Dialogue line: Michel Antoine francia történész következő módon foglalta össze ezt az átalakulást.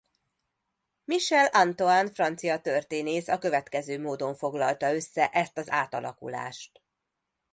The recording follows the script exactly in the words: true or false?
false